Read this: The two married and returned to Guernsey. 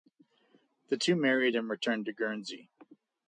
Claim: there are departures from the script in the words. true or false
false